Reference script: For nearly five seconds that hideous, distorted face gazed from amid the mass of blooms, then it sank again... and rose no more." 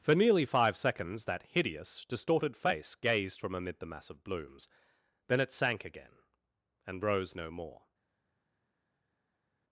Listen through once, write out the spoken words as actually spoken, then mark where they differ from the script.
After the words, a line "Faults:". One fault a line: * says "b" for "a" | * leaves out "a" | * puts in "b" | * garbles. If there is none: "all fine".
For nearly five seconds that hideous, distorted face gazed from amid the mass of blooms, then it sank again... and rose no more."
Faults:
all fine